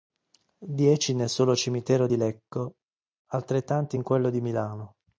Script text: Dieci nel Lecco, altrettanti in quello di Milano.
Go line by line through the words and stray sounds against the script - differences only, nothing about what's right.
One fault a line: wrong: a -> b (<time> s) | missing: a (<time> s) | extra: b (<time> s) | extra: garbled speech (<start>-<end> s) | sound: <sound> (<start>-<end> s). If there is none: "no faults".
extra: solo cimitero di (1.3 s)